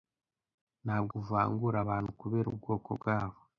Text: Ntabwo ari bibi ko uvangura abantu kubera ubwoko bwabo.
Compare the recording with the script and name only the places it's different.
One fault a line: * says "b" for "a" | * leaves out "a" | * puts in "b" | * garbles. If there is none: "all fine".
* leaves out "ari bibi ko"